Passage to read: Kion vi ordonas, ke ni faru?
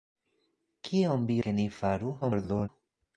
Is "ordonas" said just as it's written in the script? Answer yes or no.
no